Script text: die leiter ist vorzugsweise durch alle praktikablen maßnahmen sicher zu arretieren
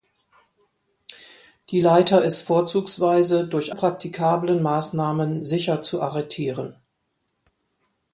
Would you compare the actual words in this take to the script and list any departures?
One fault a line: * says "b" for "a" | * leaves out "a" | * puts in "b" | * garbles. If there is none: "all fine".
* leaves out "alle"